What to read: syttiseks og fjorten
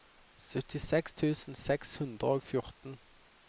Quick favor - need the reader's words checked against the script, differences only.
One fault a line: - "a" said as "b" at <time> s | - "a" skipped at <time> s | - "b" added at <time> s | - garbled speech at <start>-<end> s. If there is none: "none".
- "tusen seks hundre" added at 1.2 s